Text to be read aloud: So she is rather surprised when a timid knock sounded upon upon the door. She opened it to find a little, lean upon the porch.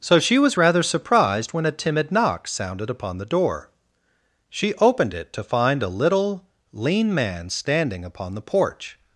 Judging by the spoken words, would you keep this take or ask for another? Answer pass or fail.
fail